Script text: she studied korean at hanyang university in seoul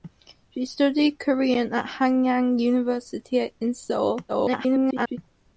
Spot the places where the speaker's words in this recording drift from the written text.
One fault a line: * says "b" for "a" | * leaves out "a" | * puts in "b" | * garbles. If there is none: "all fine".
* garbles